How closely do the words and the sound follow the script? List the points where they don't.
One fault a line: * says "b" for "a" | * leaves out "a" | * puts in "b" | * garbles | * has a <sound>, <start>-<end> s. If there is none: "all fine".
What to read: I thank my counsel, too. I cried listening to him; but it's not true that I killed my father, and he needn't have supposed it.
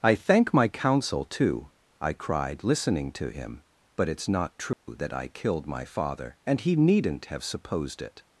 * has a dropout, 4.7-4.9 s